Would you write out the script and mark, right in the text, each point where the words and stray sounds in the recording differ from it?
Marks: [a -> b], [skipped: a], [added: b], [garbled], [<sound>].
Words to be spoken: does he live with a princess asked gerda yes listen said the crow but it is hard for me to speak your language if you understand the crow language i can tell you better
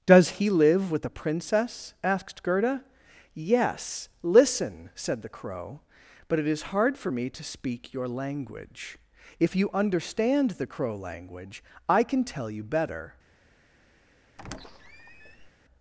does he live with a princess asked gerda yes listen said the crow but it is hard for me to speak your language if you understand the crow language i can tell you better [squeak]